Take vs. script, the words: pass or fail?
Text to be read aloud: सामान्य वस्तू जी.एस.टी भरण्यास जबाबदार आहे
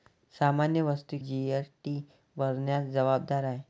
pass